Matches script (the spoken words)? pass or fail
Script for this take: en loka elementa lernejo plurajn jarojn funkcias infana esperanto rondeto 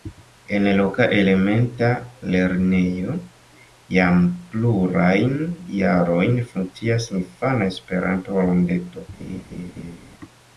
fail